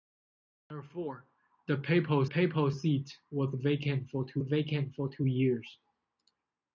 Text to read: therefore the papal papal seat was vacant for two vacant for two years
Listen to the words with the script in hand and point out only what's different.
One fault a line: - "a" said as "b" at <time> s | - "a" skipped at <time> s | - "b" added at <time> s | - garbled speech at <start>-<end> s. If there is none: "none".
none